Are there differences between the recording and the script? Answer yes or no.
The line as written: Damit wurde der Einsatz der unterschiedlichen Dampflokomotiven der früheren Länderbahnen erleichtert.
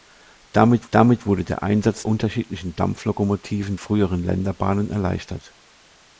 yes